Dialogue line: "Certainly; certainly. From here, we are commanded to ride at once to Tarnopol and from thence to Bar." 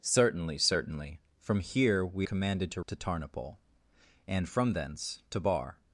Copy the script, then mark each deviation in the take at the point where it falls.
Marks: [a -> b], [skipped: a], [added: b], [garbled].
"Certainly; certainly. From here, we [skipped: are] commanded to [skipped: ride at once] to Tarnopol and from thence to Bar."